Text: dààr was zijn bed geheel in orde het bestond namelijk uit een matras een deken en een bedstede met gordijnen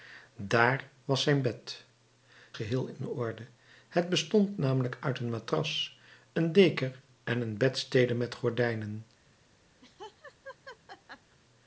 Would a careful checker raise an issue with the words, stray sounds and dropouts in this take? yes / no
yes